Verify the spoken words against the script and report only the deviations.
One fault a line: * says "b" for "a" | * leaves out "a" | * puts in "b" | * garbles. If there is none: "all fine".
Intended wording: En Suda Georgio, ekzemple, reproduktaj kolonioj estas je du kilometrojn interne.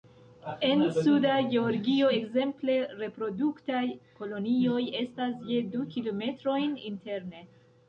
all fine